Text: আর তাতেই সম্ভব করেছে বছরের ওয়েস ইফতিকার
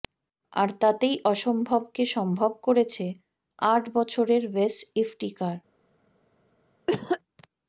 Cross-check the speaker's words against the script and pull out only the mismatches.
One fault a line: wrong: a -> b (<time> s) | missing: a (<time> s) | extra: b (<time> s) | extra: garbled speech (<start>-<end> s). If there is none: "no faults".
extra: অসম্ভবকে (1.2 s)
extra: আট (3.6 s)